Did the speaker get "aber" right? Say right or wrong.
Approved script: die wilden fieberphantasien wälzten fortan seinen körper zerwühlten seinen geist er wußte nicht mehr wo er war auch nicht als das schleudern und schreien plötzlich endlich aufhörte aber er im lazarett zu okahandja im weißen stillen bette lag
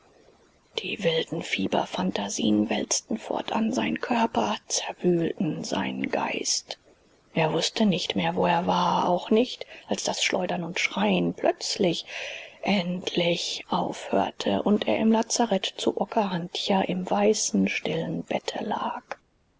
wrong